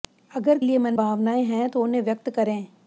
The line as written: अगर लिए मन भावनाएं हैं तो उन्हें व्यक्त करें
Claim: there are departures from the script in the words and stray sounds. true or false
false